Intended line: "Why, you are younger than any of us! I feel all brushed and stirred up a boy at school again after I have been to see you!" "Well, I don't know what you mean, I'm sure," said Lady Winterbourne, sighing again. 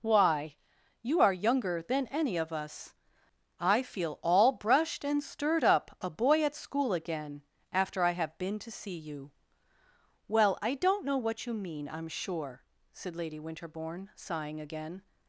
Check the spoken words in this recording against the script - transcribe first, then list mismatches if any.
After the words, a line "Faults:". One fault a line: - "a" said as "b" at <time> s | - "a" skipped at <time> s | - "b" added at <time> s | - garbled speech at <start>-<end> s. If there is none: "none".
"Why, you are younger than any of us! I feel all brushed and stirred up a boy at school again after I have been to see you!" "Well, I don't know what you mean, I'm sure," said Lady Winterbourne, sighing again.
Faults:
none